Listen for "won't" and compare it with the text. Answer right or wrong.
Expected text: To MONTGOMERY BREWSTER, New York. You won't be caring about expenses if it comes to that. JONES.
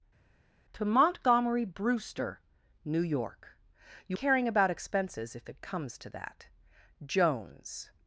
wrong